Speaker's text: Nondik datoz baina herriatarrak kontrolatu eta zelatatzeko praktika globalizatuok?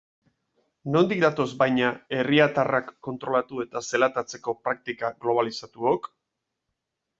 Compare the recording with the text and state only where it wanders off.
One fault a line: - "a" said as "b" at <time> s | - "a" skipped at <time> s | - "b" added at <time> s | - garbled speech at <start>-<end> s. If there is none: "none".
none